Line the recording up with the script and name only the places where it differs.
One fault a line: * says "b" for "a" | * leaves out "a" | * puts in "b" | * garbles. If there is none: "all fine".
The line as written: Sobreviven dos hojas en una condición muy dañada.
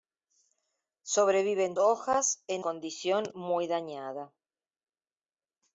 * leaves out "dos"
* leaves out "una"